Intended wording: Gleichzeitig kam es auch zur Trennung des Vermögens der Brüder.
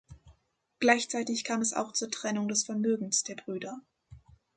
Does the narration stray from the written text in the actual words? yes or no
no